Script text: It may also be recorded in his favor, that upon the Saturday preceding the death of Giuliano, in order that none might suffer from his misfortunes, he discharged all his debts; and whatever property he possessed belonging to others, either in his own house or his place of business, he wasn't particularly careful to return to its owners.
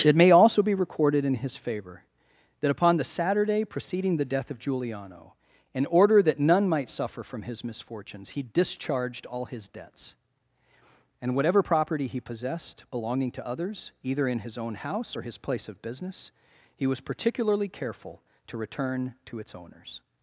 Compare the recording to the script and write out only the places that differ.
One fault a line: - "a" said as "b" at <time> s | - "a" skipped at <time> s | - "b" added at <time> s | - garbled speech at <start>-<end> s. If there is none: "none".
- "wasn't" said as "was" at 16.9 s